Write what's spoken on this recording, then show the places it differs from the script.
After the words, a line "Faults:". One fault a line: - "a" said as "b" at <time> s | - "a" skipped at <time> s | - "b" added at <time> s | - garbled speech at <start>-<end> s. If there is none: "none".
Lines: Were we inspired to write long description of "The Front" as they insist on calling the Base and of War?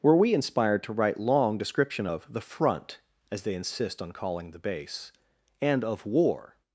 Were we inspired to write long description of "The Front" as they insist on calling the Base and of War?
Faults:
none